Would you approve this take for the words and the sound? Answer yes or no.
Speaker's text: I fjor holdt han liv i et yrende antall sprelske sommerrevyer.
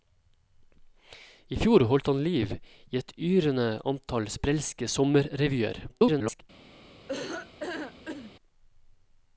no